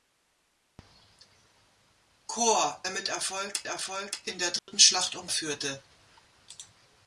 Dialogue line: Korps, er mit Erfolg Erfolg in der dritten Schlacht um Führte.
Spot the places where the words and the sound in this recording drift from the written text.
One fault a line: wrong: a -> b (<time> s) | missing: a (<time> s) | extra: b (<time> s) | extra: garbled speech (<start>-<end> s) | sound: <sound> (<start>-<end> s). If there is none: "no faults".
sound: dropout (4.6-4.7 s)